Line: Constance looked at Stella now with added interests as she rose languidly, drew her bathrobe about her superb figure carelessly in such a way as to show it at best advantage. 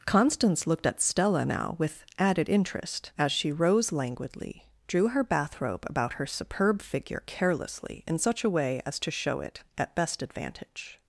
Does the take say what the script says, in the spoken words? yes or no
no